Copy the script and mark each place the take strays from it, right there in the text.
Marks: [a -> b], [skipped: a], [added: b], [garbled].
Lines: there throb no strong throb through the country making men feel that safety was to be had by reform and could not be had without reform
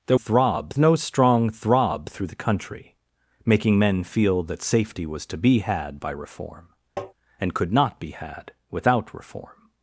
there throb no strong throb through the country making men feel that safety was to be had by reform and could not be had without reform